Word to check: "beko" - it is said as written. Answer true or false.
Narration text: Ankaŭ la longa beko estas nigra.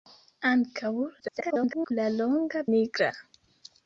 false